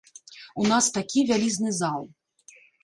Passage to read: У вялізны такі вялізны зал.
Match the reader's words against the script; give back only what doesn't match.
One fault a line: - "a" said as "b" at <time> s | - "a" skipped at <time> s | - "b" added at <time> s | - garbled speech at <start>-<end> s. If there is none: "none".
- "вялізны" said as "нас" at 0.7 s